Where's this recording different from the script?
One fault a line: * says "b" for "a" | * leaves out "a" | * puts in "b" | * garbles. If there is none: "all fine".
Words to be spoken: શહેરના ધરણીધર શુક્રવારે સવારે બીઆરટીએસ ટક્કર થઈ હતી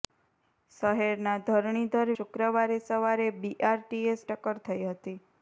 all fine